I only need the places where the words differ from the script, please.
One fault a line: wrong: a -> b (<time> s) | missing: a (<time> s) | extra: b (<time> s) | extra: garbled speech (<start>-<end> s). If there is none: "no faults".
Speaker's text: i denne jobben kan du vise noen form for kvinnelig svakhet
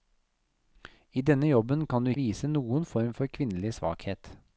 no faults